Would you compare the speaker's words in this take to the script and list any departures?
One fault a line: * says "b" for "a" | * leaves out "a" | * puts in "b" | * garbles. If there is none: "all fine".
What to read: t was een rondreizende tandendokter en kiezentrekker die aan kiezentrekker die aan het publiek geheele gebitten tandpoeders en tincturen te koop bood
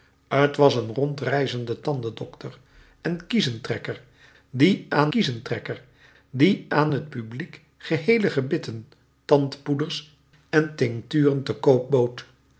all fine